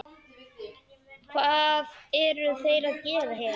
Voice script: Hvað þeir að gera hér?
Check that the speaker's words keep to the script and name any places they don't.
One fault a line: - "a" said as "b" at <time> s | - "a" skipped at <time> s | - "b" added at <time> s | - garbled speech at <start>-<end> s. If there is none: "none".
- "eru" added at 2.2 s